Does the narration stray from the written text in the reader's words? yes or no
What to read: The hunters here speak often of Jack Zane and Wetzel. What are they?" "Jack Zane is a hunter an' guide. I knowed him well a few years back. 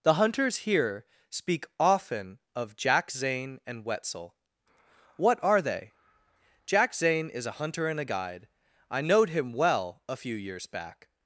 yes